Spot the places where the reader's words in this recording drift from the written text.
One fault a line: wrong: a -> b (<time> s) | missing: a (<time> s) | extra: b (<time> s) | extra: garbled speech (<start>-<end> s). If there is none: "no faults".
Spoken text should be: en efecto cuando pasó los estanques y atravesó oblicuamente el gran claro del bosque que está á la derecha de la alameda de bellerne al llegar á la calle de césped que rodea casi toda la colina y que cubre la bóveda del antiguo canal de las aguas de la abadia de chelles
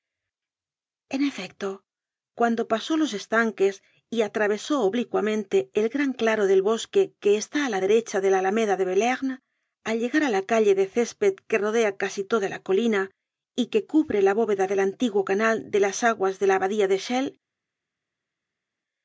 no faults